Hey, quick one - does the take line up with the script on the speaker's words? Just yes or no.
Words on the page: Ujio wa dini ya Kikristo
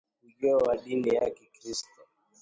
yes